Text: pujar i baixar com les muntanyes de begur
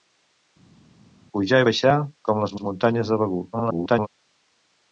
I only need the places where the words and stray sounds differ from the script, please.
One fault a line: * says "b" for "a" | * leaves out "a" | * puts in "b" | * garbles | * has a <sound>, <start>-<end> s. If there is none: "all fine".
* puts in "les"
* garbles